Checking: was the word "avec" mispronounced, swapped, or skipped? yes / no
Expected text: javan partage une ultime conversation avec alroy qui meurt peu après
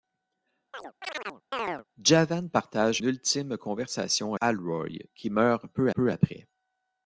yes